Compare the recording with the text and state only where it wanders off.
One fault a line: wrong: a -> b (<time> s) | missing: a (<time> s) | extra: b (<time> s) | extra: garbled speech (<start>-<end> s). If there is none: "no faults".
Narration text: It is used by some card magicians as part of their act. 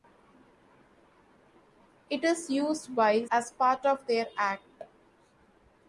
missing: some card magicians (3.2 s)